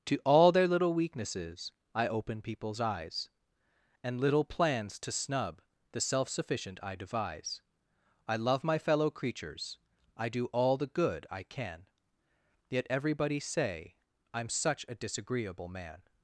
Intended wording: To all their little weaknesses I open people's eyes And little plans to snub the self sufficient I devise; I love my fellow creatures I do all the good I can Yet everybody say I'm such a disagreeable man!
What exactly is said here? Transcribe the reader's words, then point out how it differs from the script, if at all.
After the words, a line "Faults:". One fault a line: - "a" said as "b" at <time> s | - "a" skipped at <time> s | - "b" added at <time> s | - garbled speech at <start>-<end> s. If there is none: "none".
To all their little weaknesses I open people's eyes And little plans to snub the self sufficient I devise; I love my fellow creatures I do all the good I can Yet everybody say I'm such a disagreeable man!
Faults:
none